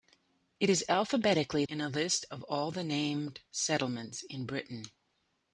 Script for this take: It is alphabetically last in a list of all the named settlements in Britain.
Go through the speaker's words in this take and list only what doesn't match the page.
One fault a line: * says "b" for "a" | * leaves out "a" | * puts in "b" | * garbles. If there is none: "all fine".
* leaves out "last"